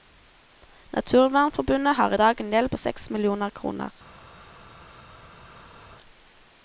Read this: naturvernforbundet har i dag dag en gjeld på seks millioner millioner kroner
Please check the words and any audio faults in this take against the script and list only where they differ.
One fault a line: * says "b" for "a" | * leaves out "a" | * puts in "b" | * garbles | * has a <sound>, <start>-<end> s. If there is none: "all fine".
* leaves out "dag"
* leaves out "millioner"